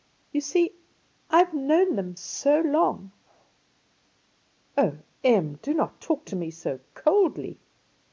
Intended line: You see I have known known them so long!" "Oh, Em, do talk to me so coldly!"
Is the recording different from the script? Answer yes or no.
yes